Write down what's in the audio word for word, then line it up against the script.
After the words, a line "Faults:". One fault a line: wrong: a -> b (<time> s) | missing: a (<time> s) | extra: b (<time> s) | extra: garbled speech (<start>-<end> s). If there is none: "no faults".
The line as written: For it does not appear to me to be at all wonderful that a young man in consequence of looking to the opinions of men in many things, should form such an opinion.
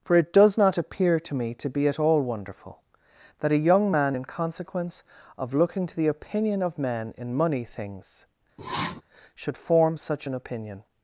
For it does not appear to me to be at all wonderful that a young man in consequence of looking to the opinion of men in money things, should form such an opinion.
Faults:
wrong: opinions -> opinion (6.1 s)
wrong: many -> money (7.3 s)